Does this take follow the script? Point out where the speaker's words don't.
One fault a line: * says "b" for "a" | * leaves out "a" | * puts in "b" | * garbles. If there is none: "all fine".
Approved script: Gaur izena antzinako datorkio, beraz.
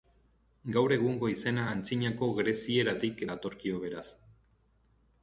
* puts in "egungo"
* puts in "grezieratik"